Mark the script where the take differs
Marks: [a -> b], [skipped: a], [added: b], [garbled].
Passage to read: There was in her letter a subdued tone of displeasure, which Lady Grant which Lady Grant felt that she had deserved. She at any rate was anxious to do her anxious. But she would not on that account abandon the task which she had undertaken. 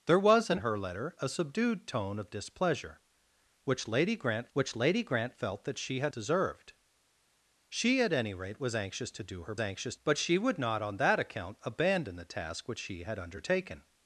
There was in her letter a subdued tone of displeasure, which Lady Grant which Lady Grant felt that she had deserved. She at any rate was anxious to do her anxious. But she would not on that account abandon the task which she had undertaken.